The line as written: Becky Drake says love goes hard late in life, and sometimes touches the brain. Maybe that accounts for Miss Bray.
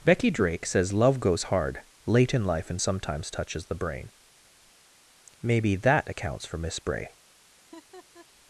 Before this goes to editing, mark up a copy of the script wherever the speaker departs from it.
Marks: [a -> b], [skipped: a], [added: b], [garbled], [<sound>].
Becky Drake says love goes hard late in life, and sometimes touches the brain. Maybe that accounts for Miss Bray. [laugh]